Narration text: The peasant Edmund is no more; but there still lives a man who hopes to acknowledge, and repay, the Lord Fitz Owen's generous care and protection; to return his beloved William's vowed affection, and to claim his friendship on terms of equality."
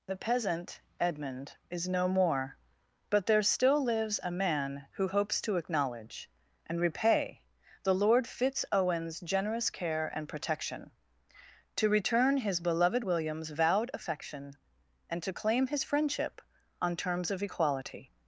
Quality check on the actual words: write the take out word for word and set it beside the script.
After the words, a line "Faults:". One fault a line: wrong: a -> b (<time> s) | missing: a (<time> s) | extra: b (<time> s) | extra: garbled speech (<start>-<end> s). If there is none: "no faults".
The peasant Edmund is no more; but there still lives a man who hopes to acknowledge, and repay, the Lord Fitz Owen's generous care and protection; to return his beloved William's vowed affection, and to claim his friendship on terms of equality."
Faults:
no faults